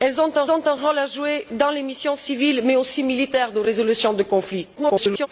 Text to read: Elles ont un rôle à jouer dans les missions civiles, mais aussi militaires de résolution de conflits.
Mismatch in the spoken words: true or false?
true